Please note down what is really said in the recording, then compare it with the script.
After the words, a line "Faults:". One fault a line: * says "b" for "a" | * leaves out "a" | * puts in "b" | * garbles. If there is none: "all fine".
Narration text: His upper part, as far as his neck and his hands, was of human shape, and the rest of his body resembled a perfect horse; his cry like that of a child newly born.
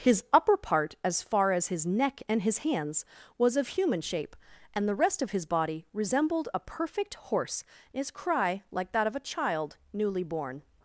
His upper part, as far as his neck and his hands, was of human shape, and the rest of his body resembled a perfect horse; his cry like that of a child newly born.
Faults:
all fine